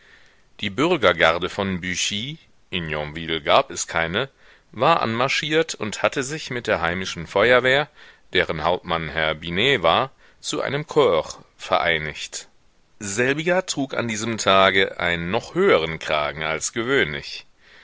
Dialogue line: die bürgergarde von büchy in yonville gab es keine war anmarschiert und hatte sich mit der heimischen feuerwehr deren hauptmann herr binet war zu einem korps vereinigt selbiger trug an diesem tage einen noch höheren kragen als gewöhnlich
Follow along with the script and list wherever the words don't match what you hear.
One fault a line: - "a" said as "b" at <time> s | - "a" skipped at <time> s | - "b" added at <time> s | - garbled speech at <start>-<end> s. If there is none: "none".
none